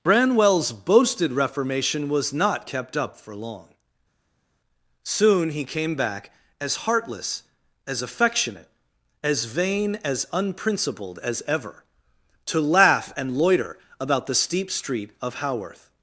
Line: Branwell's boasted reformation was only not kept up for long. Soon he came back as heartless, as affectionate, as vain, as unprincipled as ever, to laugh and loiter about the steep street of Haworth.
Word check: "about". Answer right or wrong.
right